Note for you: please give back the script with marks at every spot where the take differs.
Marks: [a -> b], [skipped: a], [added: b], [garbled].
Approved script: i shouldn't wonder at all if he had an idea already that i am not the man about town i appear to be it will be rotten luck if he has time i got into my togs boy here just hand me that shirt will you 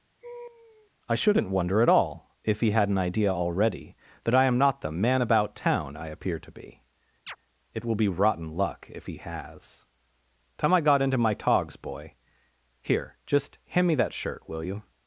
i shouldn't wonder at all if he had an idea already that i am not the man about town i appear to be it will be rotten luck if he has time i got into my togs boy here just hand me that shirt will you